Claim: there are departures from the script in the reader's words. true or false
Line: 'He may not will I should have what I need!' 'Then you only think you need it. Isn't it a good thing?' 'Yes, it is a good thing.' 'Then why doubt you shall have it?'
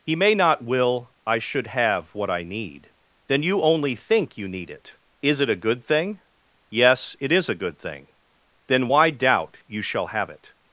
true